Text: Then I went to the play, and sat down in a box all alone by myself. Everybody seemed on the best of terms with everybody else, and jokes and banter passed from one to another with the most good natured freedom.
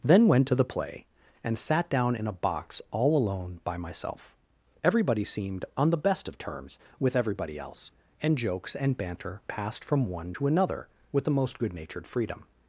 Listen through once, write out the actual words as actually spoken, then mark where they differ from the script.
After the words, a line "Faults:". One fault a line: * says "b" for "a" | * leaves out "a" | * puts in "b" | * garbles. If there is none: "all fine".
Then went to the play, and sat down in a box all alone by myself. Everybody seemed on the best of terms with everybody else, and jokes and banter passed from one to another with the most good natured freedom.
Faults:
* leaves out "I"